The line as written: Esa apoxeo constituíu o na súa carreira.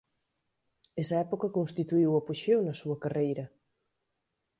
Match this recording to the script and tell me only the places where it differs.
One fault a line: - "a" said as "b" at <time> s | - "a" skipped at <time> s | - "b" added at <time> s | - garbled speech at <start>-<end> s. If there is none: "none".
- "apoxeo" said as "época" at 1.2 s
- "apoxeo" added at 2.2 s